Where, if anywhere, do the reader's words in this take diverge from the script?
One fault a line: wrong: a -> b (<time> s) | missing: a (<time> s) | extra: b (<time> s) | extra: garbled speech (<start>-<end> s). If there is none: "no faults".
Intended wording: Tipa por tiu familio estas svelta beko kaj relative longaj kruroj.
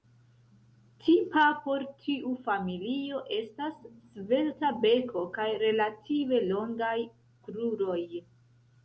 no faults